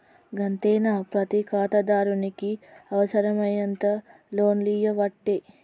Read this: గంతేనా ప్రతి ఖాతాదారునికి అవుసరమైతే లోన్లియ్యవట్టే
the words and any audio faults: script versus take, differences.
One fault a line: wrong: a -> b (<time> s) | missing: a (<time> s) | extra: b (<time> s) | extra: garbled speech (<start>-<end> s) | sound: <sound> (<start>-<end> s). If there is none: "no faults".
no faults